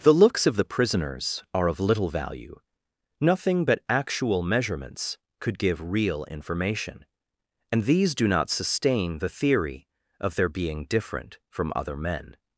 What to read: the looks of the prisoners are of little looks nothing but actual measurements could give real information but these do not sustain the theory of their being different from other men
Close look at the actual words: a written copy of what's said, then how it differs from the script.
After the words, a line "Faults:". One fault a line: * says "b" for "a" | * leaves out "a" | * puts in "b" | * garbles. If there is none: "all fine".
the looks of the prisoners are of little value nothing but actual measurements could give real information and these do not sustain the theory of their being different from other men
Faults:
* says "value" for "looks"
* says "and" for "but"